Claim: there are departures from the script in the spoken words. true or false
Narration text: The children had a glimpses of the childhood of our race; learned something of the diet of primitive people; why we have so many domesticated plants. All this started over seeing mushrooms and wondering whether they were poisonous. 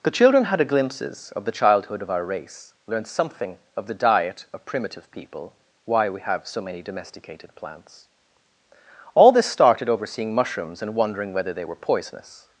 false